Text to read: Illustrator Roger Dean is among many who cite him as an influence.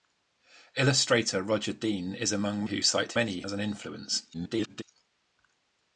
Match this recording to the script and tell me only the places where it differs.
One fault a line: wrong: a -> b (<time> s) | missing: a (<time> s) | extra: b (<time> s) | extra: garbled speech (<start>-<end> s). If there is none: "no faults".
missing: many (2.6 s)
wrong: him -> many (3.1 s)
extra: garbled speech (4.3-4.8 s)